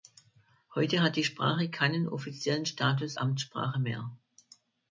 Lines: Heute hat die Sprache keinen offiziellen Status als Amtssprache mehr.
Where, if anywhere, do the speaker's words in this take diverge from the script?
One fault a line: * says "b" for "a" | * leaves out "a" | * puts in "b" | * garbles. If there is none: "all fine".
* leaves out "als"